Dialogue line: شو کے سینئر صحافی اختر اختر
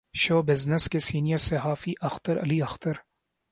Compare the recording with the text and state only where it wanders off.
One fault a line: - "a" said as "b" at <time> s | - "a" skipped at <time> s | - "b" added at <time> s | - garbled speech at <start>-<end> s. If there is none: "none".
- "بزنس" added at 0.4 s
- "علی" added at 2.4 s